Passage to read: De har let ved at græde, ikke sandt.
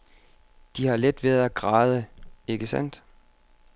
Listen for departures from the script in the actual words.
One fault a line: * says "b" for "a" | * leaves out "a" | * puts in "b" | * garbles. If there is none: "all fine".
all fine